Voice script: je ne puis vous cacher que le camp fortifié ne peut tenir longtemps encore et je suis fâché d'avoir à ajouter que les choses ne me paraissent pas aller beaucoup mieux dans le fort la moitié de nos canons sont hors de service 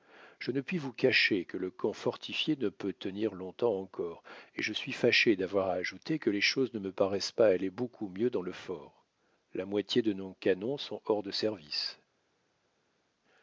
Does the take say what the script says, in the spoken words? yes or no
yes